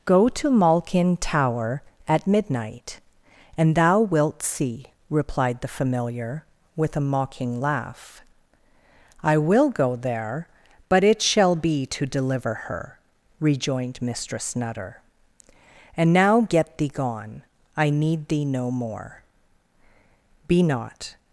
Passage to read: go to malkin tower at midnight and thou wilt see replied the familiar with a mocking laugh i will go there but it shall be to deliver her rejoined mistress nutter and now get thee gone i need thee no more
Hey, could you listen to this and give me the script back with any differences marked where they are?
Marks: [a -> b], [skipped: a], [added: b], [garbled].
go to malkin tower at midnight and thou wilt see replied the familiar with a mocking laugh i will go there but it shall be to deliver her rejoined mistress nutter and now get thee gone i need thee no more [added: be not]